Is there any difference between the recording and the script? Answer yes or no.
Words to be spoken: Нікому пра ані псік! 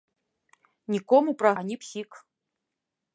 no